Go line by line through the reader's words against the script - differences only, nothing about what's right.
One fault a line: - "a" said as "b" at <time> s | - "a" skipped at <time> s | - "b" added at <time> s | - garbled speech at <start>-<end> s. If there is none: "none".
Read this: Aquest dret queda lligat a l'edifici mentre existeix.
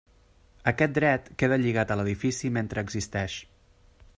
none